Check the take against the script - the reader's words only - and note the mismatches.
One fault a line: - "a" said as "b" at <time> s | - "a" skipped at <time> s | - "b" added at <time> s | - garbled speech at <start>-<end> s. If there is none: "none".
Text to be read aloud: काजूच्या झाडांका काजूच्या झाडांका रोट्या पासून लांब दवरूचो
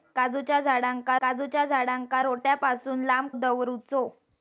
none